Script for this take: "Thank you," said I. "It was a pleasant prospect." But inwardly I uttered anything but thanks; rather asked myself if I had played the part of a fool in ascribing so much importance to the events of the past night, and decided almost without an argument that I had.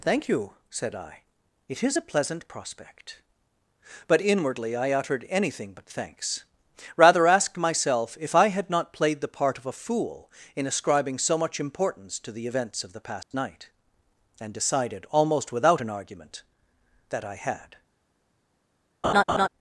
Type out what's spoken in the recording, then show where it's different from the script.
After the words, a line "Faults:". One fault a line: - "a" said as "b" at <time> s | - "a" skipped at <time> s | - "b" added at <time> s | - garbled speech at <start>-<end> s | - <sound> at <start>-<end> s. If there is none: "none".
"Thank you," said I. "It is a pleasant prospect." But inwardly I uttered anything but thanks; rather asked myself if I had not played the part of a fool in ascribing so much importance to the events of the past night, and decided almost without an argument that I had.
Faults:
- "was" said as "is" at 1.8 s
- "not" added at 8.7 s
- dropout at 13.2-13.3 s
- laugh at 19.0-19.5 s